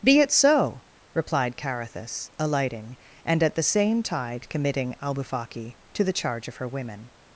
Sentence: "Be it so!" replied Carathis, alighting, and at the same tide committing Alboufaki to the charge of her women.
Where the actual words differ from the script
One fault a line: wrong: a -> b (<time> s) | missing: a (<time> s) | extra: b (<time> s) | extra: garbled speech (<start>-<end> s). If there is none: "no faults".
no faults